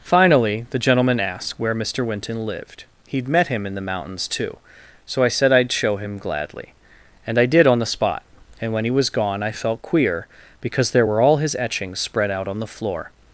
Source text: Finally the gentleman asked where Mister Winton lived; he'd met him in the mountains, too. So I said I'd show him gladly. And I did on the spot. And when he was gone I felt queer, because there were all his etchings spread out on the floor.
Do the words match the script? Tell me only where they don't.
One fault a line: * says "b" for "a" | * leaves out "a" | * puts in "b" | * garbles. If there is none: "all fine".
all fine